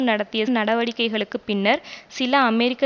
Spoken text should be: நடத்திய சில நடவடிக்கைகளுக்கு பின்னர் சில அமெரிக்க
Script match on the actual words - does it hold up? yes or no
no